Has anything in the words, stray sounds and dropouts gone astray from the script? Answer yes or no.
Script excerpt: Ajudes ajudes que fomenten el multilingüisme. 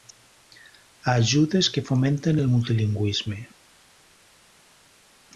yes